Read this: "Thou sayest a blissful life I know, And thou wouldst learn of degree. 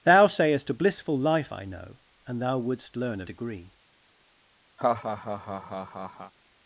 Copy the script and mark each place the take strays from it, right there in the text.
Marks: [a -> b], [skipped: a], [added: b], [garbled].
"Thou sayest a blissful life I know, And thou wouldst learn of degree.